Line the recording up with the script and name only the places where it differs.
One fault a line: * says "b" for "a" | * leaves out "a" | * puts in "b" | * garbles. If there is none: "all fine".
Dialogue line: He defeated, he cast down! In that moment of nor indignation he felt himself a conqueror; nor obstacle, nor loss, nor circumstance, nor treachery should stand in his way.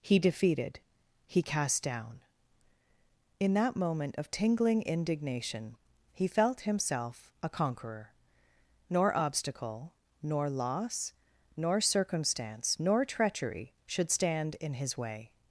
* says "tingling" for "nor"